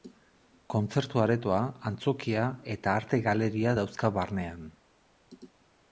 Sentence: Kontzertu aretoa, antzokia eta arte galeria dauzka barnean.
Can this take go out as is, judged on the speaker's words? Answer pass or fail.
pass